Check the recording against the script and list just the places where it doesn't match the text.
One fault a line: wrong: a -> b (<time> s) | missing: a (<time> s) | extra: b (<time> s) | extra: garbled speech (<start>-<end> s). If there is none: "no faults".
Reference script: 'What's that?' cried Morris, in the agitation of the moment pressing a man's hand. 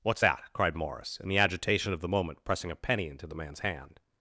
extra: penny into the (2.7 s)